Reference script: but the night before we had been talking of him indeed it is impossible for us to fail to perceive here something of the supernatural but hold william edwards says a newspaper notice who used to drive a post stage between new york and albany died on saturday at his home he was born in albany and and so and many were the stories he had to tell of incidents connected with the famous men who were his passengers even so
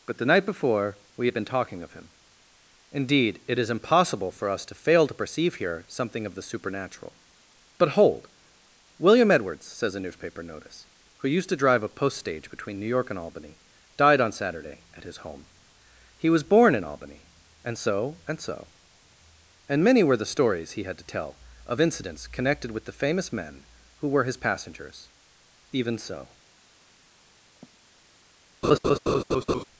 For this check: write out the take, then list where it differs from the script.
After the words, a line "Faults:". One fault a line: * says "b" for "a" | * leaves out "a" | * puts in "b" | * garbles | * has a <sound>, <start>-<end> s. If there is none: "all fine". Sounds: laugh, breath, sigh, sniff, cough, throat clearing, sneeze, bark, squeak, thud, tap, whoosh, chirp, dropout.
but the night before we had been talking of him indeed it is impossible for us to fail to perceive here something of the supernatural but hold william edwards says a newspaper notice who used to drive a post stage between new york and albany died on saturday at his home he was born in albany and so and so and many were the stories he had to tell of incidents connected with the famous men who were his passengers even so
Faults:
* puts in "so"
* has a sigh, 27.6-27.8 s
* has a laugh, 28.6-29.6 s